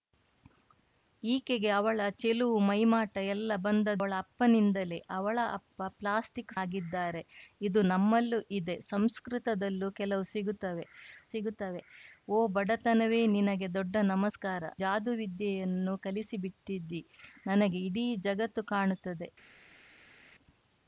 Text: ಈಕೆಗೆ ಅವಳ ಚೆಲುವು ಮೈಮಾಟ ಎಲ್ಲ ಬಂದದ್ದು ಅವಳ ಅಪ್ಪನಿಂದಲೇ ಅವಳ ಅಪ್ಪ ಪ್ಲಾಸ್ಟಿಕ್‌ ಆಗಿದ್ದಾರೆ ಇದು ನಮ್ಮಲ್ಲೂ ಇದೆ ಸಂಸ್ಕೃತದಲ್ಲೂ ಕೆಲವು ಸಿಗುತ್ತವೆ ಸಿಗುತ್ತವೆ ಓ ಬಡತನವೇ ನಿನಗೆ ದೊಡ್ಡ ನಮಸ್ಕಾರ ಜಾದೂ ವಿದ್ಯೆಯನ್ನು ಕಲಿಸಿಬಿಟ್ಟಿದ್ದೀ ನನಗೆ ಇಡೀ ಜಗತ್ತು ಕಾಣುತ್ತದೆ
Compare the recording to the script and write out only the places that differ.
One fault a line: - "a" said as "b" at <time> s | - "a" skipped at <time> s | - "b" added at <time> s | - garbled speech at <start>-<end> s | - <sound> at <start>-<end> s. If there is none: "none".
none